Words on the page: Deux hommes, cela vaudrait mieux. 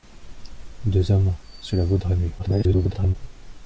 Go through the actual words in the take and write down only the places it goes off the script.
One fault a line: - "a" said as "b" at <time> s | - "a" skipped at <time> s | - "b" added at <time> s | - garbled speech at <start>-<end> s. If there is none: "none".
- garbled speech at 2.4-3.2 s